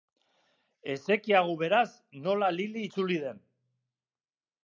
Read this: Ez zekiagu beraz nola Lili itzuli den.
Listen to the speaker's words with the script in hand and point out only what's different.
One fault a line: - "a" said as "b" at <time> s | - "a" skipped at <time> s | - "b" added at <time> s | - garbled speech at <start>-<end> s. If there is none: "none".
none